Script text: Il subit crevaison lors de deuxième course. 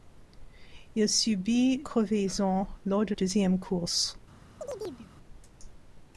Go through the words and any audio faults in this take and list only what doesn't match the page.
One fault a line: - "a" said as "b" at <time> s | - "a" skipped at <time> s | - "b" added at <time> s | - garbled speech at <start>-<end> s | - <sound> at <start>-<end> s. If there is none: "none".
- chirp at 4.6-5.1 s